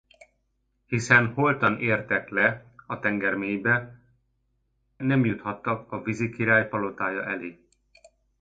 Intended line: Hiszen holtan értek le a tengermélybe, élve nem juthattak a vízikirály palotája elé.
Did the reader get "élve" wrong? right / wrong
wrong